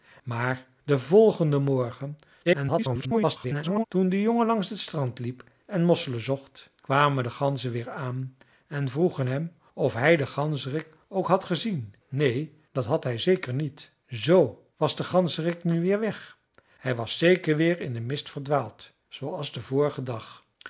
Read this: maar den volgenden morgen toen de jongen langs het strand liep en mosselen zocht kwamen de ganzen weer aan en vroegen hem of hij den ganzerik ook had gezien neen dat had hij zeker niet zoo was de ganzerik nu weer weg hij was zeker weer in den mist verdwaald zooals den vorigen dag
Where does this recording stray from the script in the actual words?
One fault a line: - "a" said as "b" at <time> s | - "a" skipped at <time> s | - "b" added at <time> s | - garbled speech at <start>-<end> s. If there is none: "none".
- garbled speech at 2.4-3.8 s